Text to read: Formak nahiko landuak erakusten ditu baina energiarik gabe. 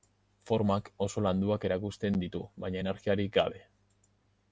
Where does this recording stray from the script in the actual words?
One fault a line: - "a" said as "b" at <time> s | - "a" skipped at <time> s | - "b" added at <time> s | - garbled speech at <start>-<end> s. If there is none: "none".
- "nahiko" said as "oso" at 1.1 s